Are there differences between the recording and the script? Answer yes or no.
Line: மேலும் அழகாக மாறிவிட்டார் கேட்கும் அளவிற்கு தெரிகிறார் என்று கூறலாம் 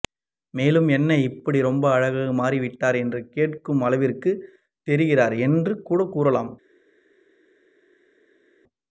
yes